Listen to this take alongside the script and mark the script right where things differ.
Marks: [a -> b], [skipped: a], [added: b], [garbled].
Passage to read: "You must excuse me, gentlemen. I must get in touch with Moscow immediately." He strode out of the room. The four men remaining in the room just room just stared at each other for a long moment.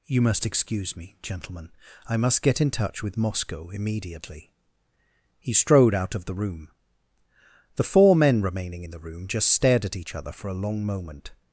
"You must excuse me, gentlemen. I must get in touch with Moscow immediately." He strode out of the room. The four men remaining in the room just [skipped: room just] stared at each other for a long moment.